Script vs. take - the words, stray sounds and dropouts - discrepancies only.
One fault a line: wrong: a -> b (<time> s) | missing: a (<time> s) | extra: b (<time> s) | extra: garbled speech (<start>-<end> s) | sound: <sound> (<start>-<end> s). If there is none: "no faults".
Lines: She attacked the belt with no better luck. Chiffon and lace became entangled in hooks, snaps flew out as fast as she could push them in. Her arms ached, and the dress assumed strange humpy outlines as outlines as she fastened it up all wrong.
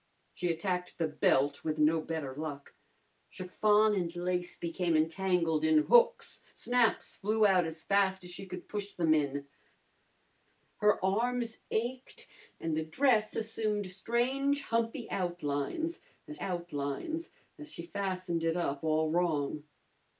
no faults